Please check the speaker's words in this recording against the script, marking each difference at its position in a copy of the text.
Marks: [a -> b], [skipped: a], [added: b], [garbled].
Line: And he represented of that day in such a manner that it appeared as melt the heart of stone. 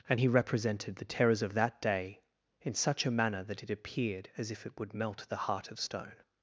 And he represented [added: the terrors] of that day in such a manner that it appeared as [added: if it would] melt the heart of stone.